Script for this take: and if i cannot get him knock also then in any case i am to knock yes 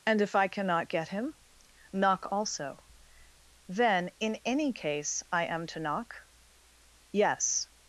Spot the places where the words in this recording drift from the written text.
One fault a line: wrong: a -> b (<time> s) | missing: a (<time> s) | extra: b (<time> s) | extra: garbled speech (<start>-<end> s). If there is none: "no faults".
no faults